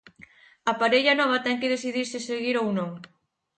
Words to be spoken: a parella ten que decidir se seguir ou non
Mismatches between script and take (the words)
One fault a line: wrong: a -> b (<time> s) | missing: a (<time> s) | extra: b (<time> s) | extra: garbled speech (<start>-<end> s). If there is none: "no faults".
extra: nova (1.2 s)